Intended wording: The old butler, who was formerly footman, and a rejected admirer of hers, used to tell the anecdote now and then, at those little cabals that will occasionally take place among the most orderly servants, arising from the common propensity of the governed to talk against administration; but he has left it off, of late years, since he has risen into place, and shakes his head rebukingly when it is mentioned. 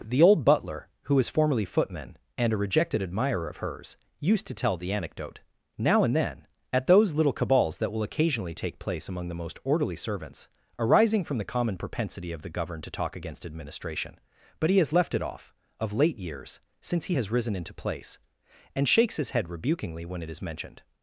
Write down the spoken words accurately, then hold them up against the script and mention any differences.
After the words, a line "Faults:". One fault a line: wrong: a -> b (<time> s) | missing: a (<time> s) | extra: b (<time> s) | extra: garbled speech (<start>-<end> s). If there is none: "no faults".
The old butler, who was formerly footman, and a rejected admirer of hers, used to tell the anecdote now and then, at those little cabals that will occasionally take place among the most orderly servants, arising from the common propensity of the governed to talk against administration; but he has left it off, of late years, since he has risen into place, and shakes his head rebukingly when it is mentioned.
Faults:
no faults